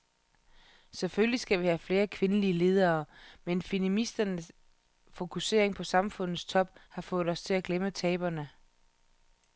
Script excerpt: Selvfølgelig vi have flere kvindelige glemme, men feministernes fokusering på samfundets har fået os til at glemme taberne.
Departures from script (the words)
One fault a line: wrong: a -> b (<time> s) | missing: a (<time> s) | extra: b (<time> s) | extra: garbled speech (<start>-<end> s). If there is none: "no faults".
extra: skal (1.4 s)
wrong: glemme -> ledere (2.5 s)
extra: top (6.5 s)